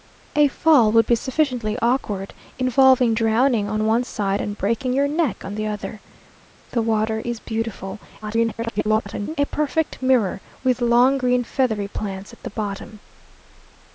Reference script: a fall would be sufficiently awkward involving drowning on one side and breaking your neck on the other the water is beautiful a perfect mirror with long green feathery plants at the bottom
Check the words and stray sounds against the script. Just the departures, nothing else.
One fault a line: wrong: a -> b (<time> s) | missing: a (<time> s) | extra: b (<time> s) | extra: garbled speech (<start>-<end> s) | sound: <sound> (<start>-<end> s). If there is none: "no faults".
extra: garbled speech (8.2-9.4 s)